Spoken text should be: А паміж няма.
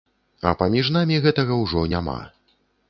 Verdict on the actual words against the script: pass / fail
fail